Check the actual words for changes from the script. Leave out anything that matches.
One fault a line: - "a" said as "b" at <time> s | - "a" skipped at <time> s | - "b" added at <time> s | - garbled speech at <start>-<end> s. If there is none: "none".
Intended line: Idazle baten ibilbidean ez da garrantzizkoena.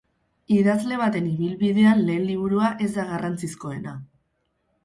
- "lehen liburua" added at 2.1 s